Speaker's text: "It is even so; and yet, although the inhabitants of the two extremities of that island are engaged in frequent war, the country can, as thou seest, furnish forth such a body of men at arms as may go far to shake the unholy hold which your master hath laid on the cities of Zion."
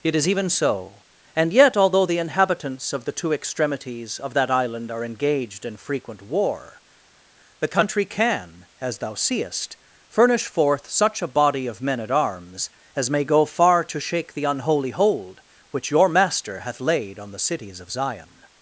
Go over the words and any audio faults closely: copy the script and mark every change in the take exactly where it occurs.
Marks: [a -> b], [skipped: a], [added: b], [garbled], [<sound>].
"It is even so; and yet, although the inhabitants of the two extremities of that island are engaged in frequent war, the country can, as thou seest, furnish forth such a body of men at arms as may go far to shake the unholy hold which your master hath laid on the cities of Zion."